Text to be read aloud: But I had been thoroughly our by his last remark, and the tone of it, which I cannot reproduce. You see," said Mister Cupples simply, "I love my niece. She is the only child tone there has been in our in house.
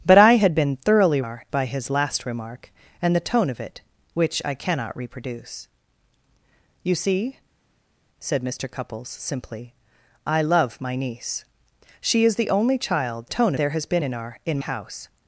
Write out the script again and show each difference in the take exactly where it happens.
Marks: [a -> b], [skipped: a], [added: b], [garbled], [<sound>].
But I had been thoroughly our by his last remark, and the tone of it, which I cannot reproduce. You see," said Mister Cupples simply, "I love my niece. She is the only child tone there has been in our in house.